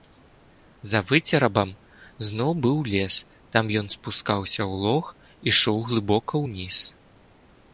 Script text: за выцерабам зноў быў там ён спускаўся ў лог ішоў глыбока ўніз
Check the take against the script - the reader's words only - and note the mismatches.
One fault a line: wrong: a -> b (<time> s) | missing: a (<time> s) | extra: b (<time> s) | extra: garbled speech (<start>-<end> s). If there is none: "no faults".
extra: лес (2.9 s)